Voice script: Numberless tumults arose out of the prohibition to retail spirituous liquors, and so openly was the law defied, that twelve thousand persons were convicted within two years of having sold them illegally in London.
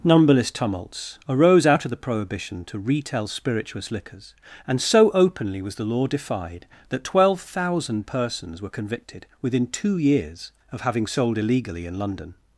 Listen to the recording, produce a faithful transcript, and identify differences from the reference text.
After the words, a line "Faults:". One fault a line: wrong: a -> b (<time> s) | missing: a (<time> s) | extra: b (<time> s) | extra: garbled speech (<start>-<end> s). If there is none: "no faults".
Numberless tumults arose out of the prohibition to retail spirituous liquors, and so openly was the law defied, that twelve thousand persons were convicted within two years of having sold illegally in London.
Faults:
missing: them (11.4 s)